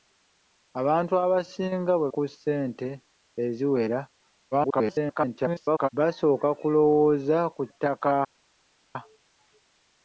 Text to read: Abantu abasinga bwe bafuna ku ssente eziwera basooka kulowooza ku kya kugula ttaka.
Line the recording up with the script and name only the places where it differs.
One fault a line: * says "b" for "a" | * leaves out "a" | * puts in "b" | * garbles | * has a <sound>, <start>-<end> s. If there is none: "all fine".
* leaves out "bafuna"
* garbles
* leaves out "kya kugula"